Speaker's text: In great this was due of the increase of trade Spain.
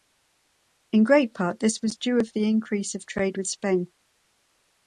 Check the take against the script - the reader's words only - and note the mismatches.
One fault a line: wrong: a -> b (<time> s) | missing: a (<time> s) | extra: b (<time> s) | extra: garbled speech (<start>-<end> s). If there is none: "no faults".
extra: part (1.4 s)
extra: with (3.4 s)